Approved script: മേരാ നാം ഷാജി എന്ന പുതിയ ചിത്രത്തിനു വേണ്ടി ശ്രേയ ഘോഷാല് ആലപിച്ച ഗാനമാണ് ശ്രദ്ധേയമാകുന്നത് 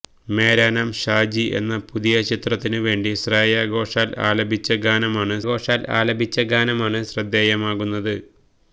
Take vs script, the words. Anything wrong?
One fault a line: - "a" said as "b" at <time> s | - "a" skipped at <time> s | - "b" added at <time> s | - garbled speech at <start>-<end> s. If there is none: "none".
- "ഘോഷാല് ആലപിച്ച ഗാനമാണ്" added at 5.5 s